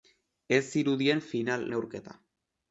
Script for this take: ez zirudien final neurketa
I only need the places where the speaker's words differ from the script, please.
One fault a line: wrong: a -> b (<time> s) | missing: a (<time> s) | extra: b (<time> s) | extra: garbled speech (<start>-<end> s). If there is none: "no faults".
no faults